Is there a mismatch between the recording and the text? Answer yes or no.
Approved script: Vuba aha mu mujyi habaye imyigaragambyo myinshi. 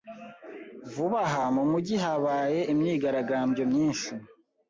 no